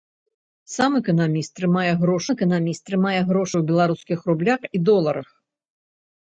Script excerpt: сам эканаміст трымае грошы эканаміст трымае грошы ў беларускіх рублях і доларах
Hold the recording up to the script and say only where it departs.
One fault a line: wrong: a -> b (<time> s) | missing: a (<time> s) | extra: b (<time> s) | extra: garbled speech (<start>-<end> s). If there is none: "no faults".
no faults